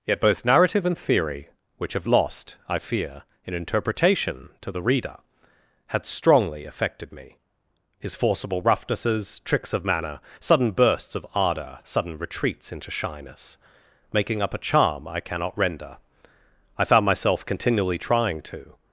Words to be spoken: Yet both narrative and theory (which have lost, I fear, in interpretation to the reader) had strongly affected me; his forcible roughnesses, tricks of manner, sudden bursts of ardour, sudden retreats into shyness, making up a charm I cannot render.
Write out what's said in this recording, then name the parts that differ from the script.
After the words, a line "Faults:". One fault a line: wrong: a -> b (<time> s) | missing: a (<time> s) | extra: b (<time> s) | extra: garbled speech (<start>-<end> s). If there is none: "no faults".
Yet both narrative and theory (which have lost, I fear, in interpretation to the reader) had strongly affected me; his forcible roughnesses, tricks of manner, sudden bursts of ardour, sudden retreats into shyness, making up a charm I cannot render. I found myself continually trying to
Faults:
extra: I found myself continually trying to (16.8 s)